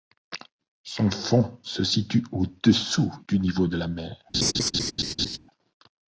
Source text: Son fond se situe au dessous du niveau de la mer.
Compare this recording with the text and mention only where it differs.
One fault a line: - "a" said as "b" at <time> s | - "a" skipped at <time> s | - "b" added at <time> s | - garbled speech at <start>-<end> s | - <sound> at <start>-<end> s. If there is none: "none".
- laugh at 4.3-5.4 s